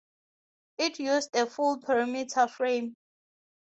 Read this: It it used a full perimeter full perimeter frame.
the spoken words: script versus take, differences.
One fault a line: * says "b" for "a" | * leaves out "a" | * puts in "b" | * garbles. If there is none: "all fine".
* leaves out "it"
* leaves out "full perimeter"